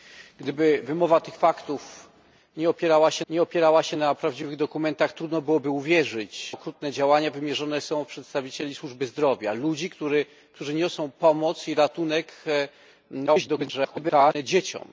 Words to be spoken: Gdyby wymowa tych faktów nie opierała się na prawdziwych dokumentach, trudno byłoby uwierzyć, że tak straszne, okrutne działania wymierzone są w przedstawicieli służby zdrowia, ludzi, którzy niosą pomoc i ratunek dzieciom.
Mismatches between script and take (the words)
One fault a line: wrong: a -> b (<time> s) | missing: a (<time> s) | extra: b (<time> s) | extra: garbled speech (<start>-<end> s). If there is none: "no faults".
extra: nie opierała się (3.3 s)
missing: że tak straszne (6.5 s)
extra: garbled speech (13.3-14.4 s)